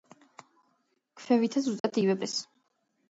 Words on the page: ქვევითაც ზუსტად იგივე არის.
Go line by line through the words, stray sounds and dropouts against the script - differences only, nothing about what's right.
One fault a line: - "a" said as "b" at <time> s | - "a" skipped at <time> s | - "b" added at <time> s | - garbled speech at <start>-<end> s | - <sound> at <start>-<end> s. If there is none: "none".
- dropout at 1.8-1.8 s